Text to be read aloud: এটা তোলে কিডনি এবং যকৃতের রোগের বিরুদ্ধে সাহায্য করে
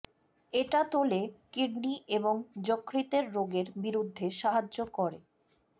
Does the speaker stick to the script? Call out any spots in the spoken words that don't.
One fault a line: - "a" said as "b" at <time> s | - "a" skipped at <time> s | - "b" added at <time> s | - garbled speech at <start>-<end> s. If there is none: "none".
none